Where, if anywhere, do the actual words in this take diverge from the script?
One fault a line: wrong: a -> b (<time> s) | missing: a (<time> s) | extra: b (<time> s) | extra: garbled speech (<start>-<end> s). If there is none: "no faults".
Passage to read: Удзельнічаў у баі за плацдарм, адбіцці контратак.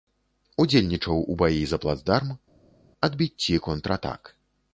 no faults